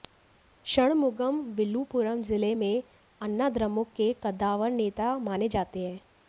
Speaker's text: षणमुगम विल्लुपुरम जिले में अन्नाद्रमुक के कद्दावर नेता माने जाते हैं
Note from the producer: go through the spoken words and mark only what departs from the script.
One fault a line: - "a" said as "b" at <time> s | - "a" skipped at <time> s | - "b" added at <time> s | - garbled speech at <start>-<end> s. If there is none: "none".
none